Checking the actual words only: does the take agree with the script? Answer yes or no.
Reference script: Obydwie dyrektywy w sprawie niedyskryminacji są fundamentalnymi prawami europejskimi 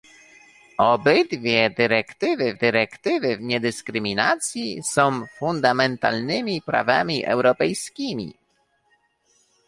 no